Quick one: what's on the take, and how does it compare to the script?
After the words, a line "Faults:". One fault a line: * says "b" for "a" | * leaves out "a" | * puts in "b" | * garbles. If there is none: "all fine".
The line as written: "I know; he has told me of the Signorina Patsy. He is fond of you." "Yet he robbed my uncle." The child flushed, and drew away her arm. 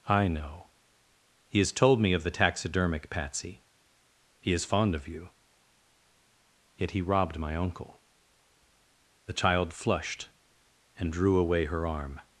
"I know; he has told me of the Taxidermic Patsy. He is fond of you." "Yet he robbed my uncle." The child flushed, and drew away her arm.
Faults:
* says "Taxidermic" for "Signorina"